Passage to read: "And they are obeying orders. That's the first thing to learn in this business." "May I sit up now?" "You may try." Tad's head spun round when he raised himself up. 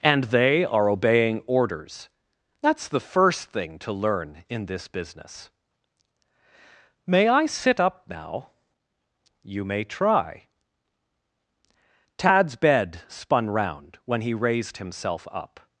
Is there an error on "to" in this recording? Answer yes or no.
no